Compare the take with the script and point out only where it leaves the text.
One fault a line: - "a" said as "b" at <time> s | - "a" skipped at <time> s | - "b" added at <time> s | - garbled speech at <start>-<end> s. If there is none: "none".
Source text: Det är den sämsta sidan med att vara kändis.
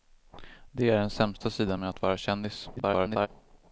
- garbled speech at 2.8-3.3 s